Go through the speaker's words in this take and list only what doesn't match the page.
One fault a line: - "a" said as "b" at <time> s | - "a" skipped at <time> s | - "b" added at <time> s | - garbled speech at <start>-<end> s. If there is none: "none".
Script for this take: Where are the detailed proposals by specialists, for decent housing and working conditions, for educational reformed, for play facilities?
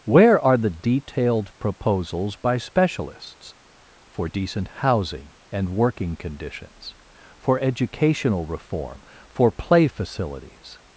- "reformed" said as "reform" at 8.5 s